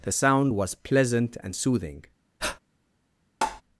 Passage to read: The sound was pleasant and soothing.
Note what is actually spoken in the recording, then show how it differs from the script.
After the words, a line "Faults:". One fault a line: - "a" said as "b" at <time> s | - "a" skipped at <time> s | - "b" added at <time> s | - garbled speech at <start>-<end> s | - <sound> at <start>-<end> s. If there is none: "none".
The sound was pleasant and soothing.
Faults:
- breath at 2.4-2.6 s
- tap at 3.4-3.6 s